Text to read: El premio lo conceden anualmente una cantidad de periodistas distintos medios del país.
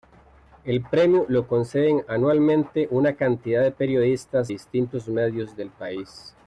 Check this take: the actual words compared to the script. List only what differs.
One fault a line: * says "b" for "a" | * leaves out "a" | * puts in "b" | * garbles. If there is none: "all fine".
all fine